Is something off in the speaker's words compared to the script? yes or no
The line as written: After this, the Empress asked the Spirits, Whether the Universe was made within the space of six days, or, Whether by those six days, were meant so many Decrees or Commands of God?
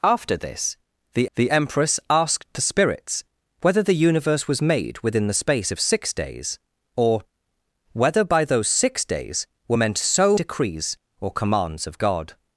yes